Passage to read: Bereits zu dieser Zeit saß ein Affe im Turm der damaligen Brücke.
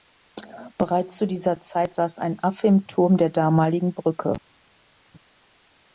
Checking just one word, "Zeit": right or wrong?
right